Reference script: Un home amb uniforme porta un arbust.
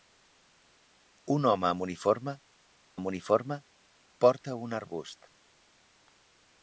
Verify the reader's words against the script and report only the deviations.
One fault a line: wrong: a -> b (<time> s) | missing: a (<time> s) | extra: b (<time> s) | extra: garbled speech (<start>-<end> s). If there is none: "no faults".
extra: amb uniforme (2.9 s)